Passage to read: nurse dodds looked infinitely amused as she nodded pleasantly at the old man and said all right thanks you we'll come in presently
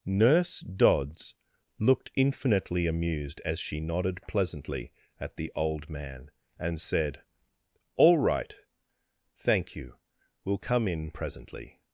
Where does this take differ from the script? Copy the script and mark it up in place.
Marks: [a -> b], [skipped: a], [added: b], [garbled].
nurse dodds looked infinitely amused as she nodded pleasantly at the old man and said all right [thanks -> thank] you we'll come in presently